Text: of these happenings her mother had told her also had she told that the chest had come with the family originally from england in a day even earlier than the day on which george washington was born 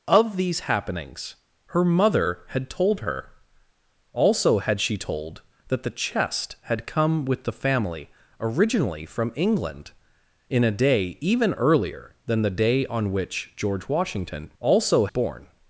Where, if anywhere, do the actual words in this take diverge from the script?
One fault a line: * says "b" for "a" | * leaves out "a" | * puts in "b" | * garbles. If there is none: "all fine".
* says "also" for "was"